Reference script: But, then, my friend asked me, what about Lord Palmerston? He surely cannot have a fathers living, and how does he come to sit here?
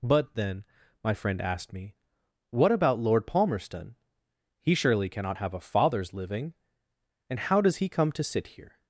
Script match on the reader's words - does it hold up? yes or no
yes